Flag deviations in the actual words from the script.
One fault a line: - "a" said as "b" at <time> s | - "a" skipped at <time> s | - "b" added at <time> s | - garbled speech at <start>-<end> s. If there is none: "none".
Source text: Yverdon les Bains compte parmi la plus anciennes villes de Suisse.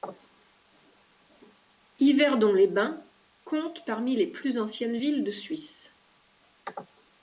- "la" said as "les" at 4.1 s